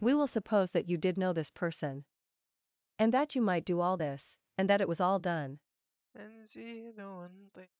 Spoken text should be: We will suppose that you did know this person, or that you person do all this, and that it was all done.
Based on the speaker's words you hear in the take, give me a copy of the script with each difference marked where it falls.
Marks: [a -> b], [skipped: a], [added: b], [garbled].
We will suppose that you did know this person, [or -> and] that you [person -> might] do all this, and that it was all done.